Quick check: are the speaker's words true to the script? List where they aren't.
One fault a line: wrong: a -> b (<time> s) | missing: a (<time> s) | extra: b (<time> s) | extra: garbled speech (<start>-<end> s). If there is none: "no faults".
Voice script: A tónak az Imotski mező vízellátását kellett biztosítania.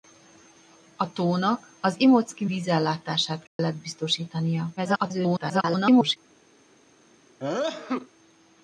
missing: mező (2.5 s)
extra: garbled speech (4.8-6.2 s)